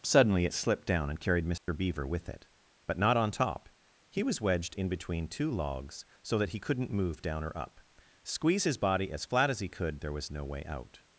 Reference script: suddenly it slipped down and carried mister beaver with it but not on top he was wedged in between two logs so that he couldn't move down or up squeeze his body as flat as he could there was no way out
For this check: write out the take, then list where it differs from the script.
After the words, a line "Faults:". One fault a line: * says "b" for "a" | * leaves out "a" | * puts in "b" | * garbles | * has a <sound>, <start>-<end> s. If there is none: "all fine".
suddenly it slipped down and carried mister beaver with it but not on top he was wedged in between two logs so that he couldn't move down or up squeeze his body as flat as he could there was no way out
Faults:
* has a dropout, 1.6-1.7 s